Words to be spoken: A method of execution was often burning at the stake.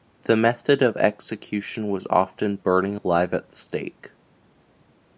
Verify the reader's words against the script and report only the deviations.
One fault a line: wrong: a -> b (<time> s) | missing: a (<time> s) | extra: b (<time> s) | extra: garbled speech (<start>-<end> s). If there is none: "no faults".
wrong: A -> The (0.2 s)
extra: alive (2.9 s)